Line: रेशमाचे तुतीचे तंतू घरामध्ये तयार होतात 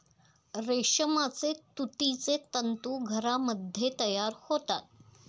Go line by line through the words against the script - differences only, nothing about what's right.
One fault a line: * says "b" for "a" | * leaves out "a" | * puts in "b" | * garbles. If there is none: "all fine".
all fine